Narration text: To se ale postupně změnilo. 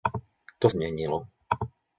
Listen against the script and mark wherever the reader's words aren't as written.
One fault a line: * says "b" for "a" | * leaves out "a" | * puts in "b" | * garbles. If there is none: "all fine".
* leaves out "se ale postupně"